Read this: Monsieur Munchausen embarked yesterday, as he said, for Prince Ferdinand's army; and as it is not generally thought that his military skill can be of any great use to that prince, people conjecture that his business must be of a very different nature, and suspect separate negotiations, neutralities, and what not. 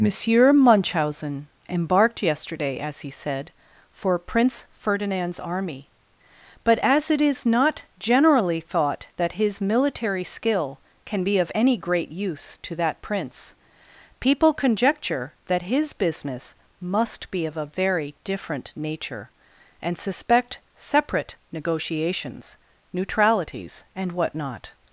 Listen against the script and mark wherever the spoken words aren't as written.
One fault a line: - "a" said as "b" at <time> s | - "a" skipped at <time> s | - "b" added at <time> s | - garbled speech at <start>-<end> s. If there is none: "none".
- "and" said as "but" at 6.6 s